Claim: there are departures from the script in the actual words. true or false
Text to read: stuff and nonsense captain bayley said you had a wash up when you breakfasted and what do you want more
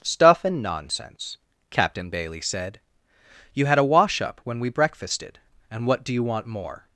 true